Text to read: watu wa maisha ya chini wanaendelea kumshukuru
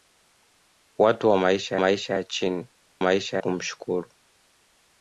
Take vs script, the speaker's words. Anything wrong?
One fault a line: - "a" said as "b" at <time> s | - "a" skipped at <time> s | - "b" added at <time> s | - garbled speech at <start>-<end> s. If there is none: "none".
- "maisha" added at 1.8 s
- "wanaendelea" said as "maisha" at 3.0 s